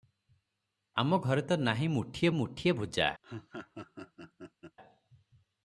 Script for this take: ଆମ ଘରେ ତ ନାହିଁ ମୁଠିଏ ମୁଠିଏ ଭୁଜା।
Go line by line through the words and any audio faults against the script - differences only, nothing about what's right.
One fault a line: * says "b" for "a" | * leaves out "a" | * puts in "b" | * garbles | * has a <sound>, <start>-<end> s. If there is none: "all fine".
* has a laugh, 3.2-4.8 s